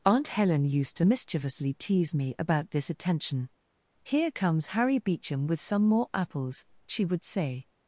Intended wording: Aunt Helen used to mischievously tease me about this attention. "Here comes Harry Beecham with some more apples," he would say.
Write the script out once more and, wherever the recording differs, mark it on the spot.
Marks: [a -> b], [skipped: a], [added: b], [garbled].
Aunt Helen used to mischievously tease me about this attention. "Here comes Harry Beecham with some more apples," [he -> she] would say.